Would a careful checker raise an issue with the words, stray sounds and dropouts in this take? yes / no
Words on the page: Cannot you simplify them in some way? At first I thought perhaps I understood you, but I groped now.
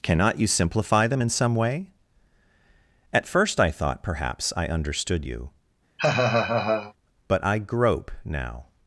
yes